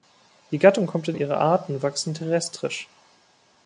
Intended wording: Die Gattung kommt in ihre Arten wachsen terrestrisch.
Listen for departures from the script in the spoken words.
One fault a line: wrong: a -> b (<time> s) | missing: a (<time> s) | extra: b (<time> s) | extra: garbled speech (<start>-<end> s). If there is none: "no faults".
no faults